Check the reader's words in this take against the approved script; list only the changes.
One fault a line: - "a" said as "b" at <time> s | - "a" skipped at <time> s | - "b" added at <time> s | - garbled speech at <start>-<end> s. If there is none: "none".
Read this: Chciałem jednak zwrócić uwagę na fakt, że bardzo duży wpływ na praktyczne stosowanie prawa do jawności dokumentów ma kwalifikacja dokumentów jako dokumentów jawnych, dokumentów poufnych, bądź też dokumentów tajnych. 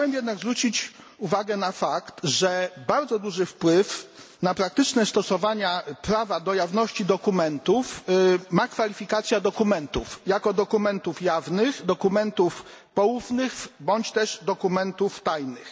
none